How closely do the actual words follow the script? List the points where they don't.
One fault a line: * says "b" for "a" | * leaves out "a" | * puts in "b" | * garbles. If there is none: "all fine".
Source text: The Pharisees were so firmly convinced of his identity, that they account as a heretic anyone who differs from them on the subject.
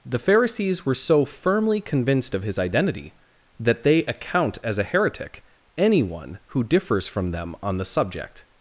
all fine